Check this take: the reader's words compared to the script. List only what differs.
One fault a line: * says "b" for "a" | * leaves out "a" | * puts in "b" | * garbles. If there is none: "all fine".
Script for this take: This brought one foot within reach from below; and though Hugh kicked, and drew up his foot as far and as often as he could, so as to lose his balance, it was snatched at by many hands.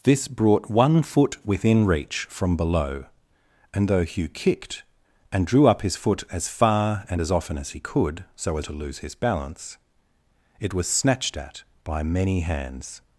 all fine